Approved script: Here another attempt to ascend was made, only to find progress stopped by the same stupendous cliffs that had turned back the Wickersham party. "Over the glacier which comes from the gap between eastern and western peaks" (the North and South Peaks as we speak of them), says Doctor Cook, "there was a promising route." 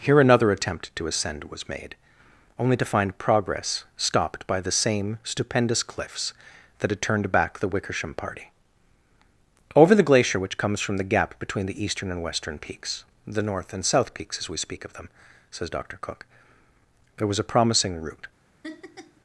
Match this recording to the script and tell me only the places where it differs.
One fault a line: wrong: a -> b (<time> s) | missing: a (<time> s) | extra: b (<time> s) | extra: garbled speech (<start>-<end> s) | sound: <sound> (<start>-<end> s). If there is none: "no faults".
extra: the (11.7 s)
sound: laugh (18.6-19.2 s)